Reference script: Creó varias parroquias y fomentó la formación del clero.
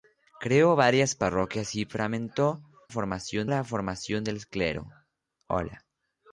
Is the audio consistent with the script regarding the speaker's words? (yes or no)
no